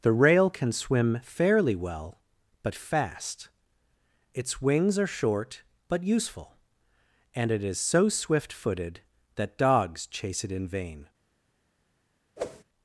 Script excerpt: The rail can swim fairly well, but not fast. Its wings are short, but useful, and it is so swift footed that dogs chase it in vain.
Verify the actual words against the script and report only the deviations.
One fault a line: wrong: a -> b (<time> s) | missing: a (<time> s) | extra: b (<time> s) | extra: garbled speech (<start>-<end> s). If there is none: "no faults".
missing: not (2.7 s)